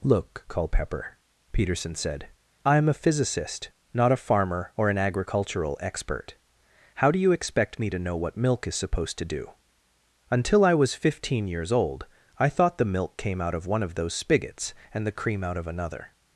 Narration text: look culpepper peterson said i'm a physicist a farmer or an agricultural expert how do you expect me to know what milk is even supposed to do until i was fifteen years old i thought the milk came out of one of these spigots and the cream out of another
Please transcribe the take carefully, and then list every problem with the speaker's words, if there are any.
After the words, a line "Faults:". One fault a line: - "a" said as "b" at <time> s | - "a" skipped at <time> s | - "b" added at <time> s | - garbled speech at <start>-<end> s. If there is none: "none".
look culpepper peterson said i'm a physicist not a farmer or an agricultural expert how do you expect me to know what milk is supposed to do until i was fifteen years old i thought the milk came out of one of those spigots and the cream out of another
Faults:
- "not" added at 3.9 s
- "even" skipped at 8.8 s
- "these" said as "those" at 13.9 s